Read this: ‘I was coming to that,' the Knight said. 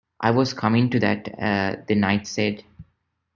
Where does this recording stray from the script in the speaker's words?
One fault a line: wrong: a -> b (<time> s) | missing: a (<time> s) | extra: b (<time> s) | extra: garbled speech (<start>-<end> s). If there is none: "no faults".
no faults